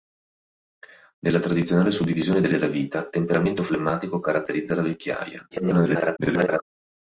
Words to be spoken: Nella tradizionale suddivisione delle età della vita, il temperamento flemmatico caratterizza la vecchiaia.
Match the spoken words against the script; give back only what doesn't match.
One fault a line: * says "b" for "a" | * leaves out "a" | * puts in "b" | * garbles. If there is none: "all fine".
* leaves out "età"
* leaves out "il"
* garbles